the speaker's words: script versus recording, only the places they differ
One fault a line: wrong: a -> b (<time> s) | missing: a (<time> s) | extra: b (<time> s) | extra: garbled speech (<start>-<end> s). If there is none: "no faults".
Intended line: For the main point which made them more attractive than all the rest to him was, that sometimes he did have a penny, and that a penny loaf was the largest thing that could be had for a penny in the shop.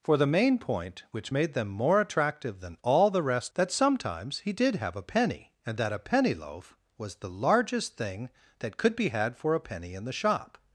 missing: to him was (3.5 s)